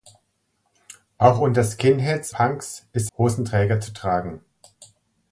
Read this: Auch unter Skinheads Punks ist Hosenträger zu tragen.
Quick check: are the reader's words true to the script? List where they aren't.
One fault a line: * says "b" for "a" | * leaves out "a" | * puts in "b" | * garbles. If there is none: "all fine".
all fine